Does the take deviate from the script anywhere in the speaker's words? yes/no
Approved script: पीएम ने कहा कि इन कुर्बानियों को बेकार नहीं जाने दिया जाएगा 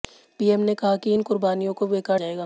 yes